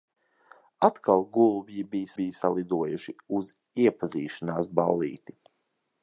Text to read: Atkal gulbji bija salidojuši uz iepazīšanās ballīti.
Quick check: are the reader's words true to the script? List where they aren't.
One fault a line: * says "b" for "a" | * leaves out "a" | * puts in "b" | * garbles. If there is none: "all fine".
* puts in "bija"